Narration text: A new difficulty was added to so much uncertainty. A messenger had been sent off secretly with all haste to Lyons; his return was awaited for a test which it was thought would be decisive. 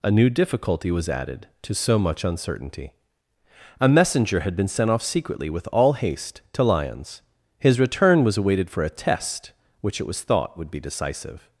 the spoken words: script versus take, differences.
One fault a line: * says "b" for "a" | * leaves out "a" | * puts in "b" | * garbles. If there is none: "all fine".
all fine